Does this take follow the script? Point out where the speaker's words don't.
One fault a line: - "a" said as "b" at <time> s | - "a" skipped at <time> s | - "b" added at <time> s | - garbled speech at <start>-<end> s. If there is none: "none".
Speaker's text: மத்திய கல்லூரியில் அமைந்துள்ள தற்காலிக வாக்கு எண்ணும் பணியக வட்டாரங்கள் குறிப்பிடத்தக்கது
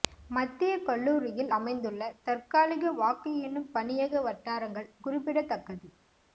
none